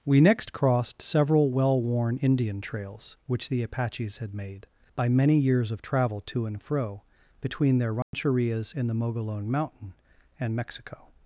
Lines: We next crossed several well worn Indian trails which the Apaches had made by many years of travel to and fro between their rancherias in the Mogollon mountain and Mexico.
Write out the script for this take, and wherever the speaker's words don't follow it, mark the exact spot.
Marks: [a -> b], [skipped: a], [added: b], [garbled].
We next crossed several well worn Indian trails which the Apaches had made by many years of travel to and fro between their rancherias in the Mogollon mountain and Mexico.